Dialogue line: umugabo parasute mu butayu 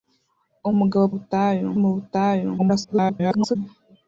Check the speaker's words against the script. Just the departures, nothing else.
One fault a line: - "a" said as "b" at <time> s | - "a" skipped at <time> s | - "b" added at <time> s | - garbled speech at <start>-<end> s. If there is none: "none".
- "parasute" said as "butayu" at 1.1 s
- garbled speech at 2.6-3.6 s